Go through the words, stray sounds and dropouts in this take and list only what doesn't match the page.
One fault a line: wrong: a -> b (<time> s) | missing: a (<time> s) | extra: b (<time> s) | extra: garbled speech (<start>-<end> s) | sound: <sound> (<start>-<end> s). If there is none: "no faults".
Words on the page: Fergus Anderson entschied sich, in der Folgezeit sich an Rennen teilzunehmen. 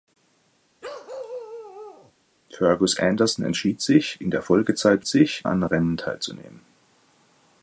sound: bark (0.8-2.1 s)